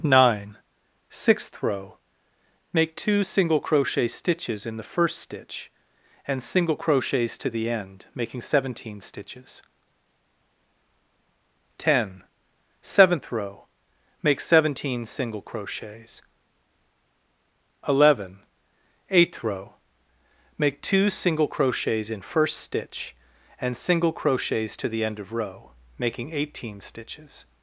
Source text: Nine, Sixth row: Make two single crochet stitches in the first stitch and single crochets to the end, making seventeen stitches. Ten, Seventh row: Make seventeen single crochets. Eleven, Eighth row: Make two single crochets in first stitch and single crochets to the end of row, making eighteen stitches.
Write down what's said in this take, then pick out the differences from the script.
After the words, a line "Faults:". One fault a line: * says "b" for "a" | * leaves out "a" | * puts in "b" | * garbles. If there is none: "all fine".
Nine, Sixth row: Make two single crochet stitches in the first stitch and single crochets to the end, making seventeen stitches. Ten, Seventh row: Make seventeen single crochets. Eleven, Eighth row: Make two single crochets in first stitch and single crochets to the end of row, making eighteen stitches.
Faults:
all fine